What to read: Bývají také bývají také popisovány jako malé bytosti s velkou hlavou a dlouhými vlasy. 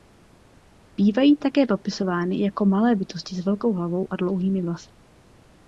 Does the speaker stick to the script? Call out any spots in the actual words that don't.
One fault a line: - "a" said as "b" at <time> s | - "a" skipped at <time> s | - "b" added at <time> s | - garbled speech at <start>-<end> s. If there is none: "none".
- "bývají také" skipped at 1.6 s